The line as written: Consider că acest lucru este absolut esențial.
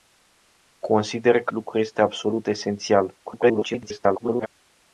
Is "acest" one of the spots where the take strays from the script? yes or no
yes